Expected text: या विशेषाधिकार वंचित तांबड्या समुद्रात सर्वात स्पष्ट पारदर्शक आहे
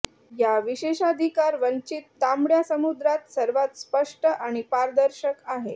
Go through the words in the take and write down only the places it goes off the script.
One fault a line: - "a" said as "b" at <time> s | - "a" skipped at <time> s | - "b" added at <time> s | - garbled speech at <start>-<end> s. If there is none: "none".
- "आणि" added at 4.3 s